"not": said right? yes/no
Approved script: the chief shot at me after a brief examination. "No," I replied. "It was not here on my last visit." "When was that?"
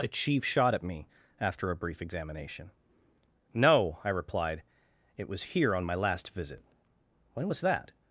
no